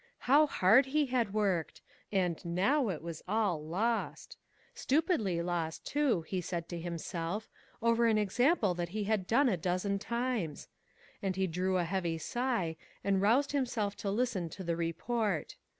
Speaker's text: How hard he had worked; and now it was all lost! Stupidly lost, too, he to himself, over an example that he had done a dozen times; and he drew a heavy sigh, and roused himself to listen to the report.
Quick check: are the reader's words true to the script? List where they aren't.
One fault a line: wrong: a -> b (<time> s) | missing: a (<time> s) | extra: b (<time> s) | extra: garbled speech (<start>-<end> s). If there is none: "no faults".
extra: said (6.4 s)